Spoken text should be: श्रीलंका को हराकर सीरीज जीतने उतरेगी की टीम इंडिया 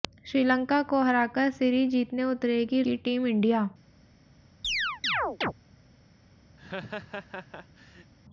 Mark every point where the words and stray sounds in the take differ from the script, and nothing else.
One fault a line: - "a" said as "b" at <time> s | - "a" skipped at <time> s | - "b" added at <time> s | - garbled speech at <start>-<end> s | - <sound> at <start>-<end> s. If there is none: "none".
- chirp at 4.6-5.5 s
- laugh at 6.6-8.1 s